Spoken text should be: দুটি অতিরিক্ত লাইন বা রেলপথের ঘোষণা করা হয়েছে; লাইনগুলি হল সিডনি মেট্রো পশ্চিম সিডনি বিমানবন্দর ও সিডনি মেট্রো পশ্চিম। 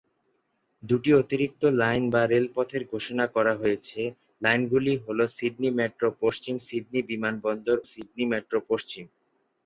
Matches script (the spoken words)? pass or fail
fail